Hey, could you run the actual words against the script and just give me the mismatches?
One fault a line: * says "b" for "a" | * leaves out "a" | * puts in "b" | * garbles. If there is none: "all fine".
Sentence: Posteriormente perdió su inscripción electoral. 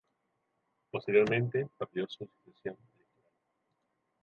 all fine